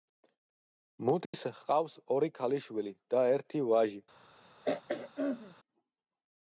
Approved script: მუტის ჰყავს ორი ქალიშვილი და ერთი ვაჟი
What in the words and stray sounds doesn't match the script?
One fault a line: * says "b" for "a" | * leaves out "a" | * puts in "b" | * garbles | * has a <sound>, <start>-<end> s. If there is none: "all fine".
* has a dropout, 1.2-1.3 s
* has a throat clearing, 4.6-5.6 s